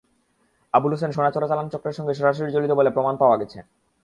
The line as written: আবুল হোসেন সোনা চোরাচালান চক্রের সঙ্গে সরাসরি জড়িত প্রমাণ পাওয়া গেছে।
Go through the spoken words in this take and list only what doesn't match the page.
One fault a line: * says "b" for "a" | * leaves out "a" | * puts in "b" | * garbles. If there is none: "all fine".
* puts in "বলে"